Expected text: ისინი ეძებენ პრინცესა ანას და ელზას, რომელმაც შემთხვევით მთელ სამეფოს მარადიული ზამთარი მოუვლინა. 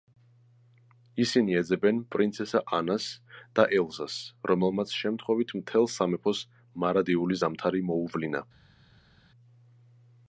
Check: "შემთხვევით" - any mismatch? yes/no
no